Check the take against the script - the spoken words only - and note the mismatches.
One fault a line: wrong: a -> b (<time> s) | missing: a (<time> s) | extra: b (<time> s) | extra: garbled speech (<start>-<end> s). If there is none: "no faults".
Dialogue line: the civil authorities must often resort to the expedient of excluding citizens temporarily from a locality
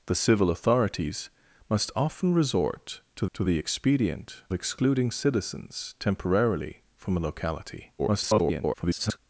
extra: to (3.3 s)
missing: of (4.4 s)
extra: garbled speech (8.0-9.2 s)